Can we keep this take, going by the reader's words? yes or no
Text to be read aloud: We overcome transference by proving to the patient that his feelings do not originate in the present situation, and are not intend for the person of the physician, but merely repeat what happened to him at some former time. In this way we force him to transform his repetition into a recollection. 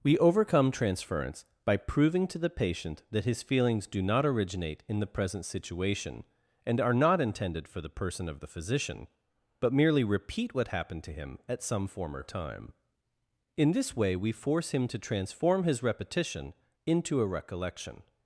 no